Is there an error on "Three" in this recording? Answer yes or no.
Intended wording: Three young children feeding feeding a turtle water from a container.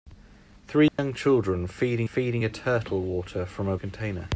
no